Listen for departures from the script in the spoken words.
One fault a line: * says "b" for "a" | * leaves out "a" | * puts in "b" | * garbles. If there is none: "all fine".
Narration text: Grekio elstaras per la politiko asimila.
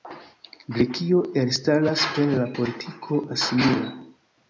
all fine